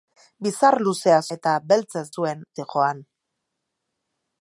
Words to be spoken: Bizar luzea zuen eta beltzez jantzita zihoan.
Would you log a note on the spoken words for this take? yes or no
yes